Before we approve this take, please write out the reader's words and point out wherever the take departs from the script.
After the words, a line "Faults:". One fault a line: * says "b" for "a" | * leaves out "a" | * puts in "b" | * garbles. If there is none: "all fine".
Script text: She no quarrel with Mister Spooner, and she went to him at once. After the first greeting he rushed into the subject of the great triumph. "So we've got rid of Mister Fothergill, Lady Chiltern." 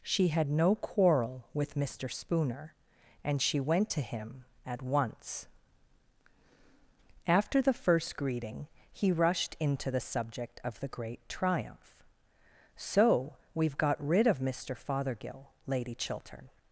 She had no quarrel with Mister Spooner, and she went to him at once. After the first greeting he rushed into the subject of the great triumph. "So we've got rid of Mister Fothergill, Lady Chiltern."
Faults:
* puts in "had"